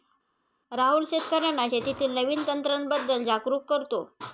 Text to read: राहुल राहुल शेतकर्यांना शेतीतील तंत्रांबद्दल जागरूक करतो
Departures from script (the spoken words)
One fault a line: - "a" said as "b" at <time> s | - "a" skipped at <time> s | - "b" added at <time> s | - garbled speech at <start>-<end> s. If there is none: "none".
- "राहुल" skipped at 1.0 s
- "नवीन" added at 2.1 s